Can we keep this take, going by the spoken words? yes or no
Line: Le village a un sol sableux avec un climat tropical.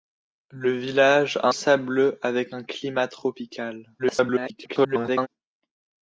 no